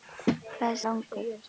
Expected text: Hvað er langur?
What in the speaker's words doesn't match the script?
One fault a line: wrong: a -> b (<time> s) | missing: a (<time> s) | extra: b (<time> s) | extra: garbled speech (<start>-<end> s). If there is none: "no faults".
no faults